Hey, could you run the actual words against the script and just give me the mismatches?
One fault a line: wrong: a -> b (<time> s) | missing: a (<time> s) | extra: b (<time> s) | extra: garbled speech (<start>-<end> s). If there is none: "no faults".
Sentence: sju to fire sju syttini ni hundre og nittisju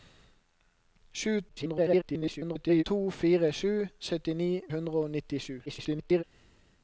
extra: garbled speech (1.5-2.8 s)
missing: ni (4.5 s)
extra: garbled speech (5.7-6.2 s)